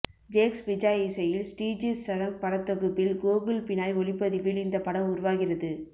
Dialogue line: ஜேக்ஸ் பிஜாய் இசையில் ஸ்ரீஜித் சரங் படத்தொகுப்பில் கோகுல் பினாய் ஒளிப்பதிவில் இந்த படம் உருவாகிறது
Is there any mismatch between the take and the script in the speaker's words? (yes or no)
no